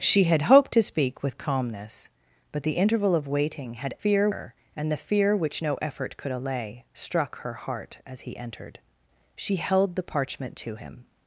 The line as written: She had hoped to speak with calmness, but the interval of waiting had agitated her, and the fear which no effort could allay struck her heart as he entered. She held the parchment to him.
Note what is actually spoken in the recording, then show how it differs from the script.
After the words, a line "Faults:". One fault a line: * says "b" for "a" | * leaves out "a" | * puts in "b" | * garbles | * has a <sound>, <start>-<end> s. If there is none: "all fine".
She had hoped to speak with calmness, but the interval of waiting had fear her, and the fear which no effort could allay struck her heart as he entered. She held the parchment to him.
Faults:
* says "fear" for "agitated"